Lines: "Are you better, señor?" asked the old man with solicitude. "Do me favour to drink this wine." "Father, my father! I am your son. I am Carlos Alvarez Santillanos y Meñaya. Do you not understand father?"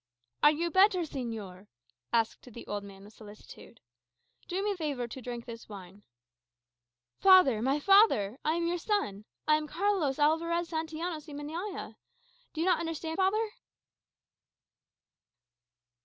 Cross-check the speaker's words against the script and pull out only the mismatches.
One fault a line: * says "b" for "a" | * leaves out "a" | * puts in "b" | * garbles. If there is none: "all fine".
all fine